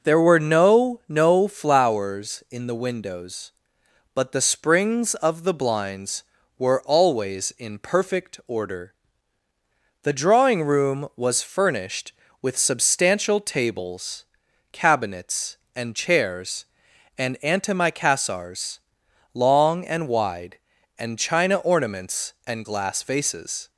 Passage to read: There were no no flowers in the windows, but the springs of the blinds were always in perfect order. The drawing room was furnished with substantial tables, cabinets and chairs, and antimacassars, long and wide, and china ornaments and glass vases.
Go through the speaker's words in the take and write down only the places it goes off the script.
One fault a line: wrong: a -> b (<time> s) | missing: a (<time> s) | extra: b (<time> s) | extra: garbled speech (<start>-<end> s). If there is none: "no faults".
no faults